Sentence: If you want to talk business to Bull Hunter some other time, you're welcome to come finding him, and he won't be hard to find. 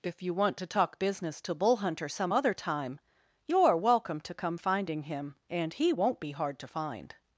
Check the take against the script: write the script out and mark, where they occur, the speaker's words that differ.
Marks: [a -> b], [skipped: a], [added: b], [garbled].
If you want to talk business to Bull Hunter some other time, you're welcome to come finding him, and he won't be hard to find.